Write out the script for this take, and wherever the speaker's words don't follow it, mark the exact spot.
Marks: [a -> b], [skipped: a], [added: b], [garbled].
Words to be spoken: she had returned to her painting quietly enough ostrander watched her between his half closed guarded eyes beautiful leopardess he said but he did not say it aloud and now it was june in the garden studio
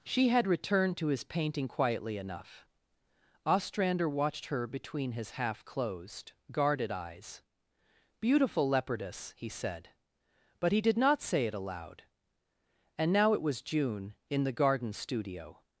she had returned to [her -> his] painting quietly enough ostrander watched her between his half closed guarded eyes beautiful leopardess he said but he did not say it aloud and now it was june in the garden studio